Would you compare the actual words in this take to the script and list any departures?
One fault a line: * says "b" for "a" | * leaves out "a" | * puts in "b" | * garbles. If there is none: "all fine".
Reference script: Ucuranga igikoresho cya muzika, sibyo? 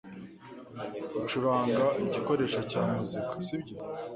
all fine